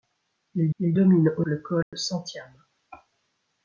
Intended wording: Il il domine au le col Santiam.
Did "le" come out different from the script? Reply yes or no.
no